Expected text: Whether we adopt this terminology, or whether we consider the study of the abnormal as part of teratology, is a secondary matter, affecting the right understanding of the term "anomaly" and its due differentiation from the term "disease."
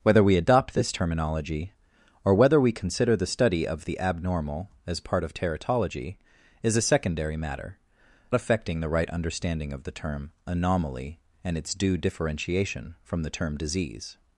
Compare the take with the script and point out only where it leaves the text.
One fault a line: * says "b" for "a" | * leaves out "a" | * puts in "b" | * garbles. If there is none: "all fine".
all fine